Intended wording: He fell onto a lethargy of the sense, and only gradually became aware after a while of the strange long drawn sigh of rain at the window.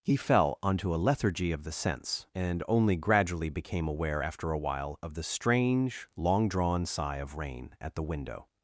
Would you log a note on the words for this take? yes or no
no